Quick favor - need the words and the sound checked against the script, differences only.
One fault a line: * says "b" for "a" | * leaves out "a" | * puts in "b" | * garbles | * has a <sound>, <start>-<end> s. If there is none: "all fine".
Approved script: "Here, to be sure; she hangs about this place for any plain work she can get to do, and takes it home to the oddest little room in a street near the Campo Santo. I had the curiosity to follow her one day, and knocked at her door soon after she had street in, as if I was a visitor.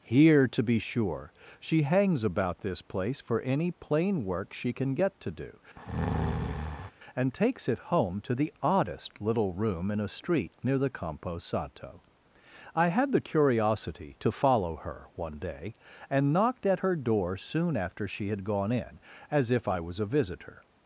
* has a breath, 5.8-6.9 s
* says "gone" for "street"